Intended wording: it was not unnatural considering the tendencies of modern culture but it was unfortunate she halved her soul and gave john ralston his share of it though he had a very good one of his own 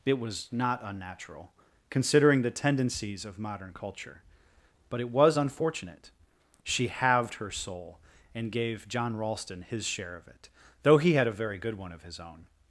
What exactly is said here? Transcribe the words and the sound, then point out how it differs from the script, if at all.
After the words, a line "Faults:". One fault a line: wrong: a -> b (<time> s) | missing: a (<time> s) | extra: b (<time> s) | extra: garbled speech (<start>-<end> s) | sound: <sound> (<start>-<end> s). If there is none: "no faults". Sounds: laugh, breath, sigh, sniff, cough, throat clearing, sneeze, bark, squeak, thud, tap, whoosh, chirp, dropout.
it was not unnatural considering the tendencies of modern culture but it was unfortunate she halved her soul and gave john ralston his share of it though he had a very good one of his own
Faults:
no faults